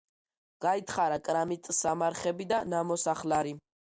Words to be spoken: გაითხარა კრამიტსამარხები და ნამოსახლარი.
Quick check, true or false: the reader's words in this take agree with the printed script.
true